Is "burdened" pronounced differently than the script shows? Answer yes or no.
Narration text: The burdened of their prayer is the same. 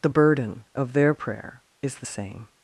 yes